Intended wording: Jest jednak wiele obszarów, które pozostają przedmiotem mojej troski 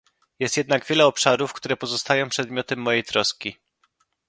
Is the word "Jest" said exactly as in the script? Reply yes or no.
yes